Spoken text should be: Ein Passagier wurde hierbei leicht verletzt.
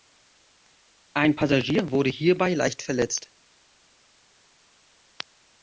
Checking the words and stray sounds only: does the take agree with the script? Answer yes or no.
yes